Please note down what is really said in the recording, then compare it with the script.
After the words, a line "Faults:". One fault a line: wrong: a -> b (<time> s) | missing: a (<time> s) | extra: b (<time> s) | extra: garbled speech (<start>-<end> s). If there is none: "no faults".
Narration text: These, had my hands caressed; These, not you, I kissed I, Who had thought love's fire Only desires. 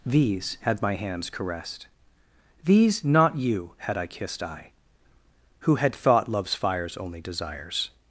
These, had my hands caressed; These, not you, had I kissed I, Who had thought love's fires Only desires.
Faults:
extra: had (3.8 s)
wrong: fire -> fires (6.5 s)